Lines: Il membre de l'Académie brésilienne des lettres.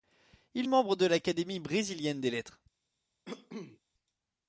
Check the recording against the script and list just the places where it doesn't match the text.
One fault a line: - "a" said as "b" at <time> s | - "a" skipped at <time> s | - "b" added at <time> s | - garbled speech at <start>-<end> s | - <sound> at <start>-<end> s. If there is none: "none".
- cough at 3.2-3.8 s